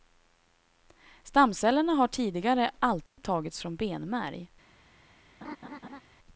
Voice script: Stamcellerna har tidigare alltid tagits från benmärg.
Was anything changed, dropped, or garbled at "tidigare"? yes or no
no